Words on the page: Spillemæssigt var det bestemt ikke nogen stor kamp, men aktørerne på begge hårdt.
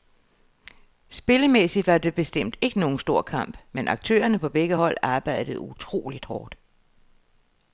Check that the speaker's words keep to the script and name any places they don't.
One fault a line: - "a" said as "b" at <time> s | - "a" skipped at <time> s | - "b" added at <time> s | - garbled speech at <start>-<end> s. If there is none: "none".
- "hold arbejdede utroligt" added at 4.7 s